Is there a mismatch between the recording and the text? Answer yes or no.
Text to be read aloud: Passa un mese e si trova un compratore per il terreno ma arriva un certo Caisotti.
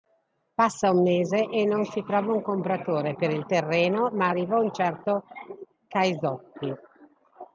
yes